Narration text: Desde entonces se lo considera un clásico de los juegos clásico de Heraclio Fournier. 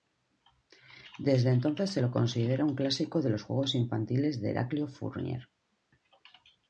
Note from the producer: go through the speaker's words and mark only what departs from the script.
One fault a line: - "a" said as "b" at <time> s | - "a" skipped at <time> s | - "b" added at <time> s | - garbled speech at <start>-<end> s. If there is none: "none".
- "clásico" said as "infantiles" at 3.7 s